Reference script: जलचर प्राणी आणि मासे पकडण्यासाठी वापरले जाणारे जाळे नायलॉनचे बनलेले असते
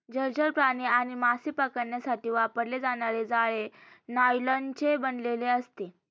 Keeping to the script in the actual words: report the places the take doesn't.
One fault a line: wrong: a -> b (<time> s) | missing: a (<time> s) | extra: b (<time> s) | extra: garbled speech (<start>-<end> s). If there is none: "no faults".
no faults